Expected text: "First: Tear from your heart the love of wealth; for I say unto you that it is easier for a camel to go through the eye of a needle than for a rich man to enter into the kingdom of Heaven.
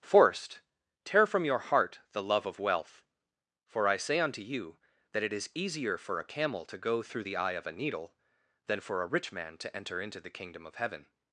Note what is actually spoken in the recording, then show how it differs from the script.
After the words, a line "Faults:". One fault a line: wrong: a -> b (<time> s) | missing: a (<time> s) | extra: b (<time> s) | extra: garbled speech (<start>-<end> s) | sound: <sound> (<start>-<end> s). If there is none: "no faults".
"Forced: Tear from your heart the love of wealth; for I say unto you that it is easier for a camel to go through the eye of a needle than for a rich man to enter into the kingdom of Heaven.
Faults:
wrong: First -> Forced (0.0 s)